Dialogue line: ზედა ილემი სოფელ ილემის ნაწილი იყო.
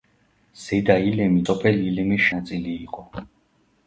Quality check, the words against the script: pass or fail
pass